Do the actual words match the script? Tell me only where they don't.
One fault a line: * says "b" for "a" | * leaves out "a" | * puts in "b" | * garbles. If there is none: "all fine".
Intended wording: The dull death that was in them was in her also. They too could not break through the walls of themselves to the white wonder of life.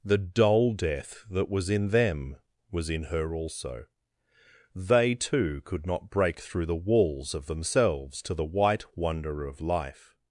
all fine